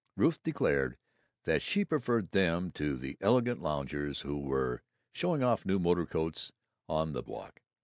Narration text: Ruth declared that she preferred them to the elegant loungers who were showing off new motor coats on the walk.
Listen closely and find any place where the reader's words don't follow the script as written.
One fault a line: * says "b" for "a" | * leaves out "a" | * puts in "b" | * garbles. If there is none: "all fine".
all fine